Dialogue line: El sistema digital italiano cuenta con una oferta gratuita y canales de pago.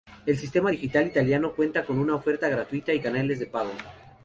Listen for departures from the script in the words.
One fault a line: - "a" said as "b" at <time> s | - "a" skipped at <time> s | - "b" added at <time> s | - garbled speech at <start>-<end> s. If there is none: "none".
none